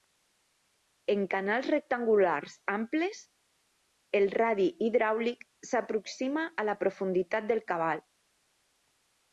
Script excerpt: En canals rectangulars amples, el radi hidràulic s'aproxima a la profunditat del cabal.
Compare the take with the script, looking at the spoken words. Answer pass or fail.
pass